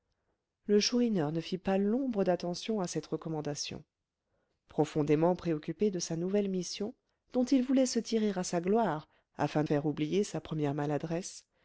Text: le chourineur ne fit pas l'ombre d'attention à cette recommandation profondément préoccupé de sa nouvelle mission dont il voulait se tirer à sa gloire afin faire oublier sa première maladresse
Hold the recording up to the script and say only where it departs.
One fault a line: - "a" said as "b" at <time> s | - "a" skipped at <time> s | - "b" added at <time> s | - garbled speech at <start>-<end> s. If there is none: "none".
none